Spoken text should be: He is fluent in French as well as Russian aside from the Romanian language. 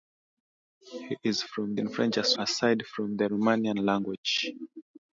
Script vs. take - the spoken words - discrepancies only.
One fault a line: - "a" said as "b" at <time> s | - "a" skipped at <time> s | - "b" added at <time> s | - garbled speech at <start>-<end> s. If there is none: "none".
- "fluent" said as "from" at 1.4 s
- "well as Russian" skipped at 2.4 s